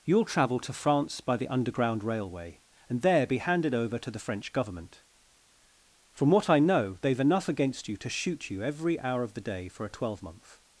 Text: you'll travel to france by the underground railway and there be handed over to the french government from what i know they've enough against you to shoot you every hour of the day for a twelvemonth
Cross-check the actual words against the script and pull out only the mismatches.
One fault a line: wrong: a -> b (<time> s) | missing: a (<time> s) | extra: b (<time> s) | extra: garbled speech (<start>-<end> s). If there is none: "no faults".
no faults